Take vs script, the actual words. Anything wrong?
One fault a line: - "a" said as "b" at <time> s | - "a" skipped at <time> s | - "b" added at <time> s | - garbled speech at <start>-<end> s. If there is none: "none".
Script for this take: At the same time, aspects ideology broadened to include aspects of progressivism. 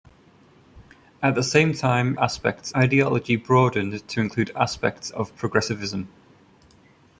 none